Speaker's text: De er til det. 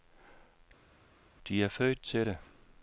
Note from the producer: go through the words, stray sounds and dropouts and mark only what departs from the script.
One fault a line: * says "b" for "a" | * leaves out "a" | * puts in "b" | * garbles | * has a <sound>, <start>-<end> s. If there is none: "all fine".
* puts in "født"